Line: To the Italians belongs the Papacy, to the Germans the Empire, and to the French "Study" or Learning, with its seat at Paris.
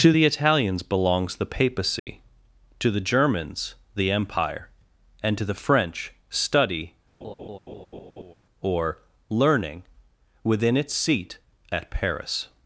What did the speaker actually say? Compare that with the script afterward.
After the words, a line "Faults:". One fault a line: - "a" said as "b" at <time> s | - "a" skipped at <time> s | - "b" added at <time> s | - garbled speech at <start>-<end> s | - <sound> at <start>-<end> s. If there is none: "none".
To the Italians belongs the Papacy, to the Germans the Empire, and to the French "Study" or Learning, within its seat at Paris.
Faults:
- dropout at 2.0-2.1 s
- laugh at 7.2-8.3 s
- "with" said as "within" at 10.4 s